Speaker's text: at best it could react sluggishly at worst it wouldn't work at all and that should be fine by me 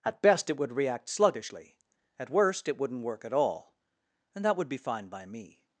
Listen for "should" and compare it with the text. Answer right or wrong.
wrong